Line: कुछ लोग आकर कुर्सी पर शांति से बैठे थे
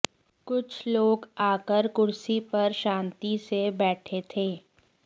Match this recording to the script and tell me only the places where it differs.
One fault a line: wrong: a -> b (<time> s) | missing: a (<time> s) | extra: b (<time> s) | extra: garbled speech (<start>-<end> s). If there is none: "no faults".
no faults